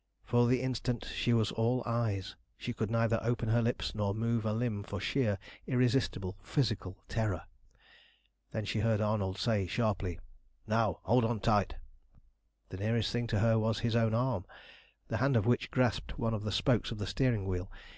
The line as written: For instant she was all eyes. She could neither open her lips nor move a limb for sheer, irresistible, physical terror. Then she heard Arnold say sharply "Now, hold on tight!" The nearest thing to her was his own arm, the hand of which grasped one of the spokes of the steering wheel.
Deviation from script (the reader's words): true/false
true